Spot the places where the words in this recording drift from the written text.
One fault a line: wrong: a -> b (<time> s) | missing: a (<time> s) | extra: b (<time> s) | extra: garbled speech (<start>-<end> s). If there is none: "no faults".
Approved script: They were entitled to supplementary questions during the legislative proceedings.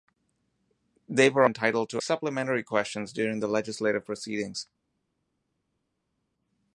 no faults